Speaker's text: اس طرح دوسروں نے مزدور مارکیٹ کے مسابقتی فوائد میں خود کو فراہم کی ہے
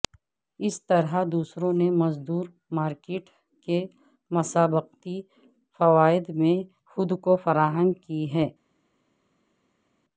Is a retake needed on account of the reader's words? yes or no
no